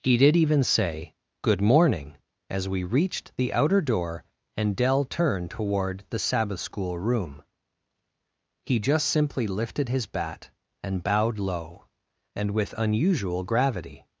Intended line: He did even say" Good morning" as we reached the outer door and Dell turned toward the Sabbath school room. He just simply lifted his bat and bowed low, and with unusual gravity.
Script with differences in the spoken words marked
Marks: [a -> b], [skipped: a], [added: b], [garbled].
He did even say" Good morning" as we reached the outer door and Dell turned toward the Sabbath school room. He just simply lifted his bat and bowed low, and with unusual gravity.